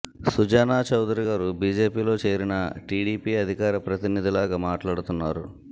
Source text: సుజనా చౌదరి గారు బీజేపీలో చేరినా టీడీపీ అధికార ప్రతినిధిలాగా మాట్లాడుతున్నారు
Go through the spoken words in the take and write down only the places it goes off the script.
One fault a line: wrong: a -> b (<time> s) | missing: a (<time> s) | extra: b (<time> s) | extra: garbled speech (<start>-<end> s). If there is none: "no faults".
no faults